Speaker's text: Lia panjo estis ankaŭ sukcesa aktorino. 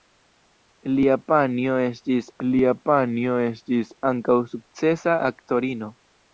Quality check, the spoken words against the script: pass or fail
fail